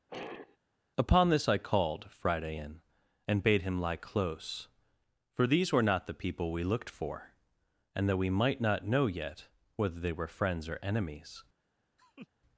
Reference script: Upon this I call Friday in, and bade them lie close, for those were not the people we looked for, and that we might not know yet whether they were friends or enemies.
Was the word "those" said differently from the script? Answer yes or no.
yes